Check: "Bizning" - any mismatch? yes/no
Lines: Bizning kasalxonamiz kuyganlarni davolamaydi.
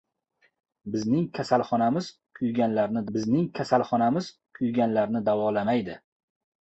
no